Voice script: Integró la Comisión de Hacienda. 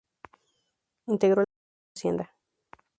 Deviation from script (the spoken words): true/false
false